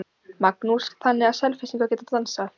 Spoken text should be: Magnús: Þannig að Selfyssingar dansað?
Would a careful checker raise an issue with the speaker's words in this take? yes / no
yes